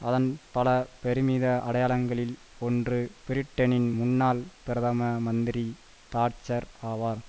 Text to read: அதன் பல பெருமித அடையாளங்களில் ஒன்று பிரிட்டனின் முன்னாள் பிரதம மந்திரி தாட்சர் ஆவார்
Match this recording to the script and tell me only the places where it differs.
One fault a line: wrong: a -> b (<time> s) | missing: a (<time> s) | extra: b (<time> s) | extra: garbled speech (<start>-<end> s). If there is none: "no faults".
no faults